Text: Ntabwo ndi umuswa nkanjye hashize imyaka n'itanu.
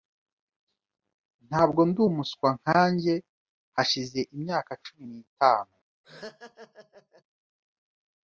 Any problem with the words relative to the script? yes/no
yes